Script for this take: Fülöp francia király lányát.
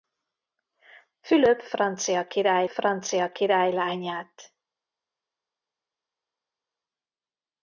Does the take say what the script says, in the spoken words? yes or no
no